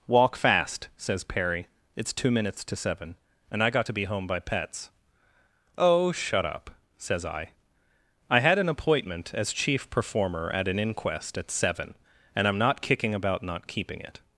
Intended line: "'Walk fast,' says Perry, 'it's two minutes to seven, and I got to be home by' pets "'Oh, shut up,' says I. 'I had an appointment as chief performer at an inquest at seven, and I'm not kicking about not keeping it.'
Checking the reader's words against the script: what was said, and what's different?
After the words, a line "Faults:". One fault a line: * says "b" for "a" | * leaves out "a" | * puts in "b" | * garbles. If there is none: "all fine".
"'Walk fast,' says Perry, 'it's two minutes to seven, and I got to be home by' pets "'Oh, shut up,' says I. 'I had an appointment as chief performer at an inquest at seven, and I'm not kicking about not keeping it.'
Faults:
all fine